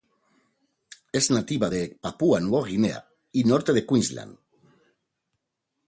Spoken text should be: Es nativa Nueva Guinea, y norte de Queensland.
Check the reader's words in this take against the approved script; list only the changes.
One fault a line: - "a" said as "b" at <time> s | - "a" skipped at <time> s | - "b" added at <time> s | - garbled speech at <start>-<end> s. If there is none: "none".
- "de Papúa" added at 1.7 s